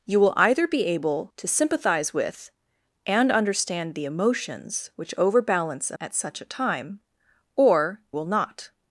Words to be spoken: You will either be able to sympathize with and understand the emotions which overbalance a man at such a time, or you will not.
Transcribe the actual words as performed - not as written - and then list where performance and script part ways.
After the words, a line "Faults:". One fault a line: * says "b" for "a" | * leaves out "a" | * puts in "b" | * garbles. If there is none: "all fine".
You will either be able to sympathize with and understand the emotions which overbalance a at such a time, or will not.
Faults:
* leaves out "man"
* leaves out "you"